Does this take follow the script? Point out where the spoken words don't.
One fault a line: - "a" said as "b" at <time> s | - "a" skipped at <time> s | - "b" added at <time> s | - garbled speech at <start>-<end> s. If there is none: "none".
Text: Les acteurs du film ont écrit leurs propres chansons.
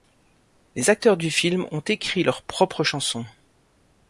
none